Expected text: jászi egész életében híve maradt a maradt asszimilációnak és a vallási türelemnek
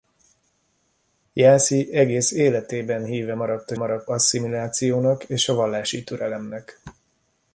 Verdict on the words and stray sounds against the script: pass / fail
pass